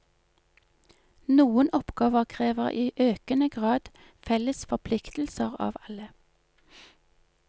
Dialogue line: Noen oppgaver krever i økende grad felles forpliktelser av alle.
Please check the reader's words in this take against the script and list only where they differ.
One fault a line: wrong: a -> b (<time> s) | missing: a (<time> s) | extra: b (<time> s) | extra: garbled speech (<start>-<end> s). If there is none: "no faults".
no faults